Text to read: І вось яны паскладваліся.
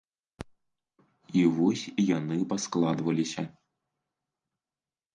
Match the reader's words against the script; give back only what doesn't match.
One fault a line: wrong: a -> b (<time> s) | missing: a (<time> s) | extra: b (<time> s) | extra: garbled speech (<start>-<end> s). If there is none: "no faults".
no faults